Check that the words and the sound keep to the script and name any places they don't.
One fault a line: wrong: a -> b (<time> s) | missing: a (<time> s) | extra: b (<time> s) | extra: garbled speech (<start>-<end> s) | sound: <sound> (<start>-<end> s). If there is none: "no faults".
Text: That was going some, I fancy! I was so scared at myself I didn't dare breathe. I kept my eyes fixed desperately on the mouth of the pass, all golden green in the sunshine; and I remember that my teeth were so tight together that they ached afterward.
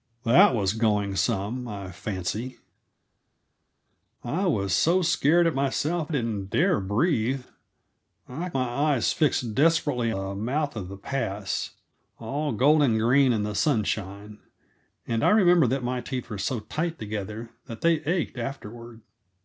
missing: I (6.1 s)
missing: kept (8.5 s)
missing: on (10.1 s)